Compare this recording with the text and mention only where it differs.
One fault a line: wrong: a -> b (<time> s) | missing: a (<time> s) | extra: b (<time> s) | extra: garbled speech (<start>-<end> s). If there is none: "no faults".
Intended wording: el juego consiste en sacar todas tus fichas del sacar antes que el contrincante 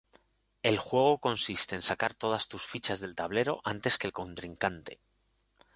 wrong: sacar -> tablero (3.1 s)